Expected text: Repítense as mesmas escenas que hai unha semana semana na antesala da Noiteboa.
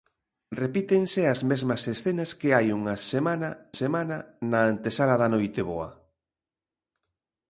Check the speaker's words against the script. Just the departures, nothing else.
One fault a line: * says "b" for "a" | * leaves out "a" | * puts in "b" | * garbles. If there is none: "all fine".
all fine